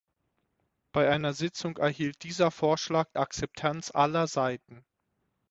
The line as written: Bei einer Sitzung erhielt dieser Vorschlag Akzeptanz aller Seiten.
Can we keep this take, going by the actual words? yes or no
yes